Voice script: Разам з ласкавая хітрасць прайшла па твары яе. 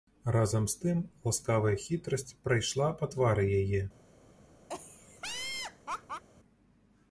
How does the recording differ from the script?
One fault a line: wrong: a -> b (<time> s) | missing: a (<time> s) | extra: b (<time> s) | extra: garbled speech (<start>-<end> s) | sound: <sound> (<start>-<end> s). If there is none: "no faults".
extra: тым (0.8 s)
sound: laugh (4.7-6.2 s)